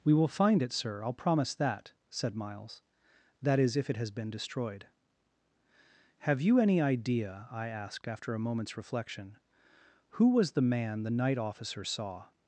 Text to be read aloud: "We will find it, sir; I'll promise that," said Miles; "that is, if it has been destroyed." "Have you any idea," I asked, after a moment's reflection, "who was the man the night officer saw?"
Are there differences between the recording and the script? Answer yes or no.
no